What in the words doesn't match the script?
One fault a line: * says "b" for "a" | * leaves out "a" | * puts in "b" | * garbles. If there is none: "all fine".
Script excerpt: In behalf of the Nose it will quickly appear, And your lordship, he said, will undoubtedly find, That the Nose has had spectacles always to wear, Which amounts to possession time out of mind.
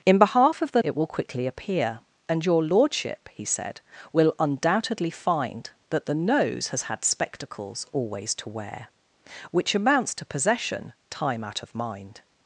* leaves out "Nose"